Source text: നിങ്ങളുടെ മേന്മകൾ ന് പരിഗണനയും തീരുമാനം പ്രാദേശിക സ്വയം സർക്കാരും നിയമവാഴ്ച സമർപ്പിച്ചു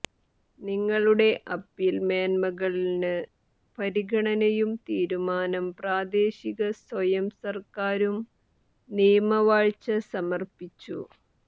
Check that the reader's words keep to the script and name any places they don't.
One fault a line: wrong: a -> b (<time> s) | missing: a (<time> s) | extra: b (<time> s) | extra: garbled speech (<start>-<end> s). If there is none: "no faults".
extra: അപ്പീൽ (1.6 s)